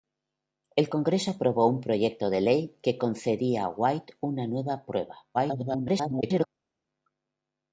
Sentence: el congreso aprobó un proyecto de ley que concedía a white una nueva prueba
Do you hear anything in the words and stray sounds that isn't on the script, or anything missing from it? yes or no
yes